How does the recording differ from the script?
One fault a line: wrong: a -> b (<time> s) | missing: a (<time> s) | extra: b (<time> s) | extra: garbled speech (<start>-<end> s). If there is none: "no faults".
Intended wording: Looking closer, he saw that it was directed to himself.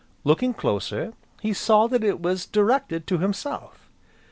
no faults